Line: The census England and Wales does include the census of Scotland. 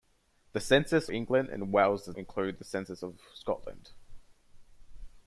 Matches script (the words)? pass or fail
pass